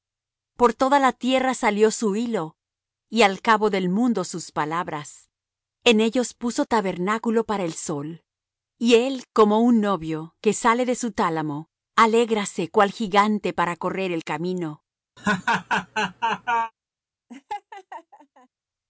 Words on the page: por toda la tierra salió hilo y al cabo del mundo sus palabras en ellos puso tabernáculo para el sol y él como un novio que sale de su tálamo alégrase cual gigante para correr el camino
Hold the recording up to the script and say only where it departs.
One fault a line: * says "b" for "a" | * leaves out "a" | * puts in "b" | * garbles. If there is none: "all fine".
* puts in "su"